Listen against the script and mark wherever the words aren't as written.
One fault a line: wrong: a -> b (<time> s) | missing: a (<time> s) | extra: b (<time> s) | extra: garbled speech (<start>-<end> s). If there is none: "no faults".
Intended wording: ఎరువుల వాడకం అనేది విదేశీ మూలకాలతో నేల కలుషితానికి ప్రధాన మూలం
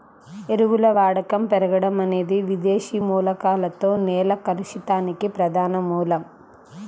extra: పెరగడం (1.5 s)